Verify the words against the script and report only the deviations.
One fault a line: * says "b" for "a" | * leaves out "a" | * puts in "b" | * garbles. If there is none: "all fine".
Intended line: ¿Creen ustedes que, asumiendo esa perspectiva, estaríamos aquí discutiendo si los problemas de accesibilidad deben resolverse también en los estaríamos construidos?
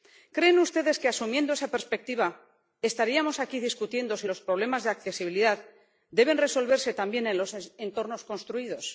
* says "entornos" for "estaríamos"